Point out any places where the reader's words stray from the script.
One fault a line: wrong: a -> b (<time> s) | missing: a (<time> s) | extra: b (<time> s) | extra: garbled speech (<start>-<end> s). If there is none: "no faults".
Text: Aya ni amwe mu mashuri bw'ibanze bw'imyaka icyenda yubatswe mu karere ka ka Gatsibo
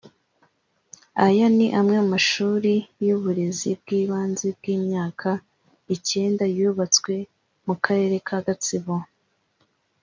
extra: y'uburezi (3.0 s)
missing: ka (8.4 s)